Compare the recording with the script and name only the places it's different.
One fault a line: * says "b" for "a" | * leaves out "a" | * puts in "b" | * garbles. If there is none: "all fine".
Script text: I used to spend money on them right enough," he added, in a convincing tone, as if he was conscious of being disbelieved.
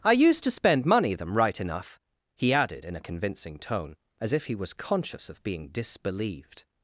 * leaves out "on"